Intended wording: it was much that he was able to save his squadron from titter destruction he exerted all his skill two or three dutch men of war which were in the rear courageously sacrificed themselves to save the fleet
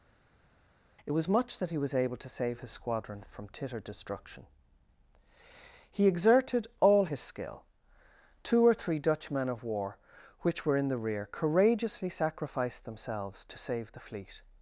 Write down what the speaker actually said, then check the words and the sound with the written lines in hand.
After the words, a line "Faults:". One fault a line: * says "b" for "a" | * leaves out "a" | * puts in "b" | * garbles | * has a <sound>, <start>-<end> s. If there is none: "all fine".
it was much that he was able to save his squadron from titter destruction he exerted all his skill two or three dutch men of war which were in the rear courageously sacrificed themselves to save the fleet
Faults:
all fine